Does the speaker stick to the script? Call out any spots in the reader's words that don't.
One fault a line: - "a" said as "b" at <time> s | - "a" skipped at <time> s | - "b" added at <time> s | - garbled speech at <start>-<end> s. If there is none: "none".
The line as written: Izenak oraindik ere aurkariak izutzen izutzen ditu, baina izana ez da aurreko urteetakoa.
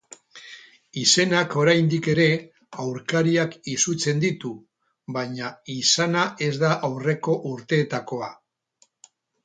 - "izutzen" skipped at 4.2 s